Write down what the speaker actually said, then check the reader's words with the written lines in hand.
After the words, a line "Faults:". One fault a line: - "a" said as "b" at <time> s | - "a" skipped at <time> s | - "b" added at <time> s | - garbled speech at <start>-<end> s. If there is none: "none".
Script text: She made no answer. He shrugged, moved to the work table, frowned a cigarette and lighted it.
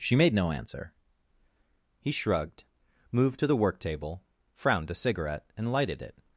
She made no answer. He shrugged, moved to the work table, frowned a cigarette and lighted it.
Faults:
none